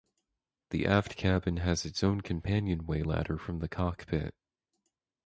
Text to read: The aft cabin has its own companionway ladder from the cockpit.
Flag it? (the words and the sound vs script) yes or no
no